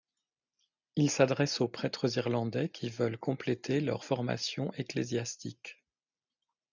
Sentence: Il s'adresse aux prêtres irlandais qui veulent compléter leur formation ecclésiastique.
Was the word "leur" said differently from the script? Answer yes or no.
no